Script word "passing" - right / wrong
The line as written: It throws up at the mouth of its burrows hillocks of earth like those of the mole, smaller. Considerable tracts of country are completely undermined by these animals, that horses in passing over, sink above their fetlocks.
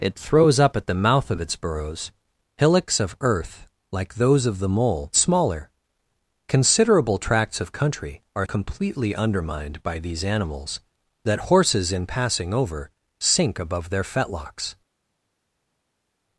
right